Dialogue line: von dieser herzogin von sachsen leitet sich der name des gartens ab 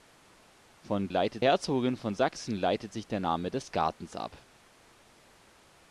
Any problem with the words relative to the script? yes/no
yes